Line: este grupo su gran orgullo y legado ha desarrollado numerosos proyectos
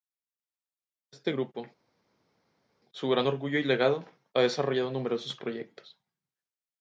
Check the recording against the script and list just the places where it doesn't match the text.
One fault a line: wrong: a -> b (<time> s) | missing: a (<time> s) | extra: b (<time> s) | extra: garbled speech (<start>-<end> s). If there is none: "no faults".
no faults